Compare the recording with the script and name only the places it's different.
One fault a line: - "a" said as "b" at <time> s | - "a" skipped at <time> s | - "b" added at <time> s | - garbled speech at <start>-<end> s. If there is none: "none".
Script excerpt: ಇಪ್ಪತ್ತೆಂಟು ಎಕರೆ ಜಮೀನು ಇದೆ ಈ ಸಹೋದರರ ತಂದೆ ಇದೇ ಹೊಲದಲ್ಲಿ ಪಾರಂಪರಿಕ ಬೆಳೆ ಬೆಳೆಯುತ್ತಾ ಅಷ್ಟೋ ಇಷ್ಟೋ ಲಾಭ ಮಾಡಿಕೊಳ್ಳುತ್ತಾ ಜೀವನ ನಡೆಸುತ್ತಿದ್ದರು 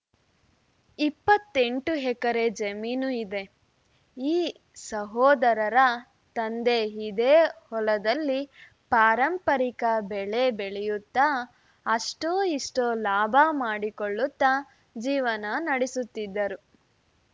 none